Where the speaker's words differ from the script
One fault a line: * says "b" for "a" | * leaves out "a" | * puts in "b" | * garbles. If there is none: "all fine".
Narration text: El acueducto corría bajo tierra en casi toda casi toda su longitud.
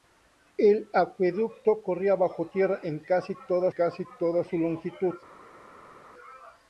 all fine